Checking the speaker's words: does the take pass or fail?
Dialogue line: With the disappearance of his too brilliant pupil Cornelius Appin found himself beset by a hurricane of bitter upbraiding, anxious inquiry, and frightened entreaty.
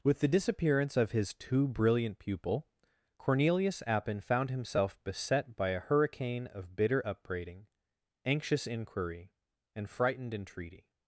pass